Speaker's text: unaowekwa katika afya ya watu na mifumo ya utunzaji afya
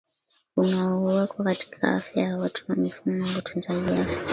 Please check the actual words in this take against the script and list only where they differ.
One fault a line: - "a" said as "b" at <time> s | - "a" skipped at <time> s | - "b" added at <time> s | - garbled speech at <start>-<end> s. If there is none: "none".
none